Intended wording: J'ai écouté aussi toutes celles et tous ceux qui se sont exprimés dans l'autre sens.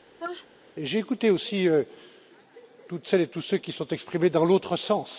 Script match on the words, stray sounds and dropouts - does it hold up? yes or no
no